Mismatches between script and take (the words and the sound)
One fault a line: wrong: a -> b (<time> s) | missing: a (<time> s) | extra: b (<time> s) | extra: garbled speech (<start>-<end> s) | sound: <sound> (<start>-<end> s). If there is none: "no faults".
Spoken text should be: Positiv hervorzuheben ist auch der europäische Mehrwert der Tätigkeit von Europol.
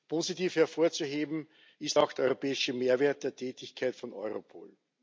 no faults